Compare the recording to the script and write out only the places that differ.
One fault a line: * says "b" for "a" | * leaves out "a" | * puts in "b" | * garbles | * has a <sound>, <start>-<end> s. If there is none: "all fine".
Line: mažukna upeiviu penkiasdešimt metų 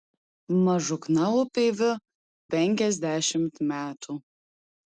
all fine